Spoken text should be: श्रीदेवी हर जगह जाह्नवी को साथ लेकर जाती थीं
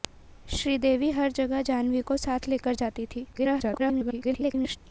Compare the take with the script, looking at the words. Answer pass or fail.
fail